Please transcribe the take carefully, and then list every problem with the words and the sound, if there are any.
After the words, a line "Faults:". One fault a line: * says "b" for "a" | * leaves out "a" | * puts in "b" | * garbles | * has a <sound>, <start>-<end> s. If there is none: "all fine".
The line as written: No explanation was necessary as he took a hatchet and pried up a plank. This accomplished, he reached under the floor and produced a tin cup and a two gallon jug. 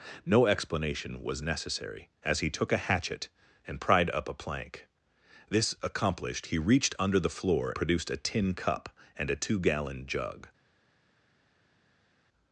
No explanation was necessary as he took a hatchet and pried up a plank. This accomplished, he reached under the floor produced a tin cup and a two gallon jug.
Faults:
* leaves out "and"